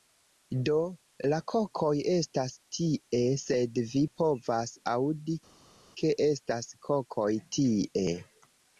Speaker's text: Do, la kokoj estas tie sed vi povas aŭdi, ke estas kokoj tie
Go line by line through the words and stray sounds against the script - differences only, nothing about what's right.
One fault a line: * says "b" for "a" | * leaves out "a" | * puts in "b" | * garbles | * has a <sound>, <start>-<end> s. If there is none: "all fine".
all fine